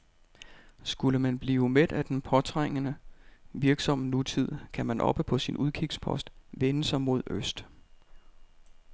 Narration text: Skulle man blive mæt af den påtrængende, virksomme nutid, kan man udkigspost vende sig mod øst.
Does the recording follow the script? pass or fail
fail